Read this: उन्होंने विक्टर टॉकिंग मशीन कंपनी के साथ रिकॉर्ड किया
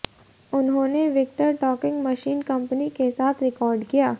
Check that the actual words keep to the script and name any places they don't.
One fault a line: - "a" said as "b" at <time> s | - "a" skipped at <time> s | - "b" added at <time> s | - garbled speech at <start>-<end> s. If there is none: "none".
none